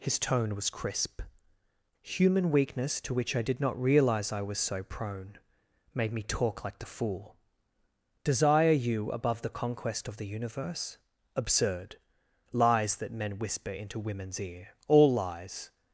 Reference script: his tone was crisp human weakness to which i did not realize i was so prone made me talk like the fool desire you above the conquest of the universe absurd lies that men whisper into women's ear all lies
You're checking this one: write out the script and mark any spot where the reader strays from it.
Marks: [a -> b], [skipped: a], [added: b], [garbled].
his tone was crisp human weakness to which i did not realize i was so prone made me talk like the fool desire you above the conquest of the universe absurd lies that men whisper into women's ear all lies